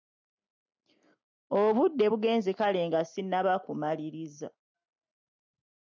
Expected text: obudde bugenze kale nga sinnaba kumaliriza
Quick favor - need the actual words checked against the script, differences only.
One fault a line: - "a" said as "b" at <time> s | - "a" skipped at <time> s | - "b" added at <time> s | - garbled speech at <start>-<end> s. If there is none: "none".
none